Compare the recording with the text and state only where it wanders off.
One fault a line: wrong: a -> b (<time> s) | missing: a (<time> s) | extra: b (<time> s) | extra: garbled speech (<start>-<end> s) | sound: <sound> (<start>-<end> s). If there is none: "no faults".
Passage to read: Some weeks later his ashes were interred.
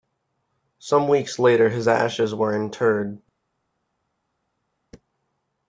no faults